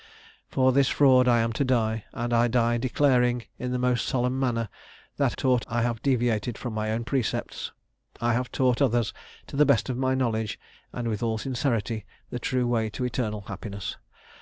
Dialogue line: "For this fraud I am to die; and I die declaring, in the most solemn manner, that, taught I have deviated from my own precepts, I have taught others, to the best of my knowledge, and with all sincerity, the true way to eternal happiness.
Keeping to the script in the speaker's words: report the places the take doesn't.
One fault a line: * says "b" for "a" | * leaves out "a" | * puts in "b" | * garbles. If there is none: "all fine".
all fine